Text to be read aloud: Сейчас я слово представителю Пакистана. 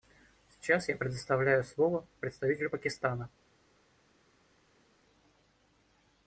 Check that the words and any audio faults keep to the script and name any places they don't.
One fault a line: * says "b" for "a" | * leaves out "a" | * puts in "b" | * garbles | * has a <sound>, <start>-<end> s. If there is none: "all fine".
* puts in "предоставляю"